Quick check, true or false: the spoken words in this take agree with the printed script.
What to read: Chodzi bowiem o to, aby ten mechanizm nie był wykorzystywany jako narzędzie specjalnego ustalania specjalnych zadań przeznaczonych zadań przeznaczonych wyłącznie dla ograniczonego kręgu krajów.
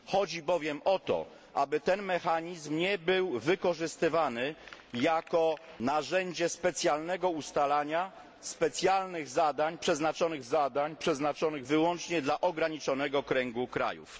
true